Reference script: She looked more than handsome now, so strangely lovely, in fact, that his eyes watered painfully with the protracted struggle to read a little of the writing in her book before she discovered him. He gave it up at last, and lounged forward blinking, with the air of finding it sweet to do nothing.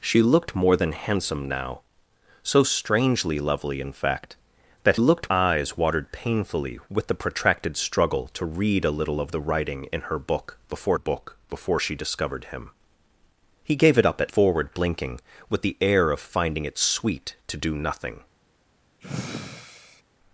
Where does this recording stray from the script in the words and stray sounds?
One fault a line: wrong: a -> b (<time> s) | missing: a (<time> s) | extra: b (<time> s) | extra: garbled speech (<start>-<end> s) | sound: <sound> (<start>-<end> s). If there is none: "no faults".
wrong: his -> looked (5.0 s)
extra: book before (10.9 s)
missing: last and lounged (14.3 s)
sound: sigh (19.0-20.0 s)